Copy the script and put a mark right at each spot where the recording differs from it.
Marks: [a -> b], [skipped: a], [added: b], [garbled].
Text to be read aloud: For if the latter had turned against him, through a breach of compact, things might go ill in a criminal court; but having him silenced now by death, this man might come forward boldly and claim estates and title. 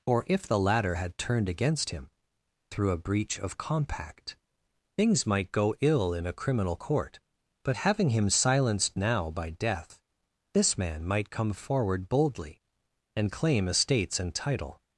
[For -> Or] if the latter had turned against him, through a breach of compact, things might go ill in a criminal court; but having him silenced now by death, this man might come forward boldly and claim estates and title.